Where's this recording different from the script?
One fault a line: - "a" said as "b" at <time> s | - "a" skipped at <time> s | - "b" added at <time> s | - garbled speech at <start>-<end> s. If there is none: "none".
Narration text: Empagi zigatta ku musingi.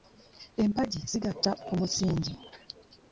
none